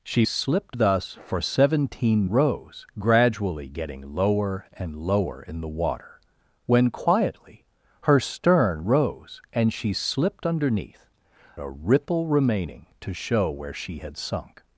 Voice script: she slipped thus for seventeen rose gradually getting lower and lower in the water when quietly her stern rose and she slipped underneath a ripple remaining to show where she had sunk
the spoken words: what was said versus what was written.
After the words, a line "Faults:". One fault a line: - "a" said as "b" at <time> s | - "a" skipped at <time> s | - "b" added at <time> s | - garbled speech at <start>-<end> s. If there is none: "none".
she slipped thus for seventeen rose gradually getting lower and lower in the water when quietly her stern rose and she slipped underneath a ripple remaining to show where she had sunk
Faults:
none